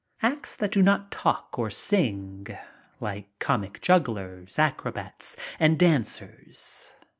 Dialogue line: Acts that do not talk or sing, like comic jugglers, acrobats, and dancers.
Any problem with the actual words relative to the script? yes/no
no